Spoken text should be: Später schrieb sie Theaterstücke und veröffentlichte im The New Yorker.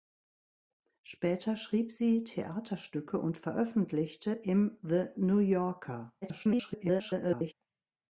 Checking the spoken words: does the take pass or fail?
fail